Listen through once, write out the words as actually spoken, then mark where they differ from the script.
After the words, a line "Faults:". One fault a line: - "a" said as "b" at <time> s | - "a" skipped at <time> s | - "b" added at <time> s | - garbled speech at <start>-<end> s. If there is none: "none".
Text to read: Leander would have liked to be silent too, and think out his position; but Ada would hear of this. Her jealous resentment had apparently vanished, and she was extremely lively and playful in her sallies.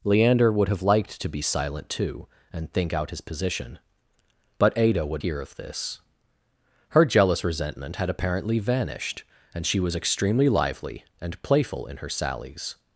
Leander would have liked to be silent too, and think out his position; but Ada would hear of this. Her jealous resentment had apparently vanished, and she was extremely lively and playful in her sallies.
Faults:
none